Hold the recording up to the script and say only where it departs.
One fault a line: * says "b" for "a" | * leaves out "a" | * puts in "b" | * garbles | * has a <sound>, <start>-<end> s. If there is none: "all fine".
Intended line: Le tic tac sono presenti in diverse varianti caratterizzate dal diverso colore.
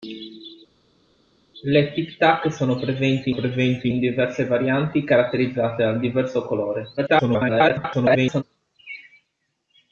* puts in "presenti"
* garbles